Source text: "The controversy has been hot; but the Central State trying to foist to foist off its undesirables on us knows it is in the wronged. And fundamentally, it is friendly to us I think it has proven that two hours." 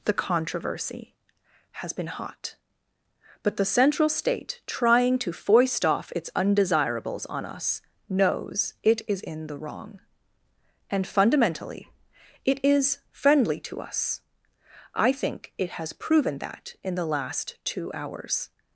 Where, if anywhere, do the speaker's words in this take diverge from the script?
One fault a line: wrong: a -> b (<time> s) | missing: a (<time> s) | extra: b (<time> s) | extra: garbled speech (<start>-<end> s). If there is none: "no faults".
missing: to foist (5.8 s)
wrong: wronged -> wrong (9.6 s)
extra: in the last (16.8 s)